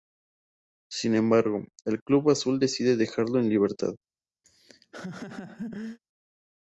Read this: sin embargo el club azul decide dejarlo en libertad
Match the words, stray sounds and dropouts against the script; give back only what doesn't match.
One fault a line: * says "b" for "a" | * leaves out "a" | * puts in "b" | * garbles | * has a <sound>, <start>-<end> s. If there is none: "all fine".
* has a laugh, 4.4-6.0 s